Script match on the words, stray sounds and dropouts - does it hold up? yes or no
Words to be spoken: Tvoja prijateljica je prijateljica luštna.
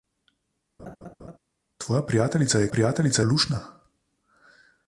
no